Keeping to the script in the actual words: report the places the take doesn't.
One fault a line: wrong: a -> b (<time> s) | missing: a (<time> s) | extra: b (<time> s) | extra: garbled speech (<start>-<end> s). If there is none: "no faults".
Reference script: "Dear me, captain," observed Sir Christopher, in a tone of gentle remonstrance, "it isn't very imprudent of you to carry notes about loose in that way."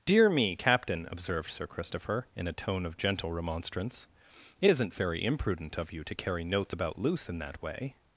no faults